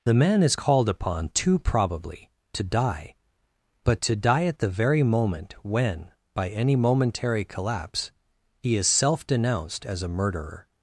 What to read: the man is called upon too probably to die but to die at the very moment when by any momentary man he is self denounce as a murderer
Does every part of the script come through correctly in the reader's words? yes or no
no